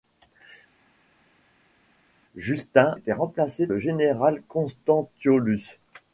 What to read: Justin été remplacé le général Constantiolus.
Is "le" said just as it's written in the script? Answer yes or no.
yes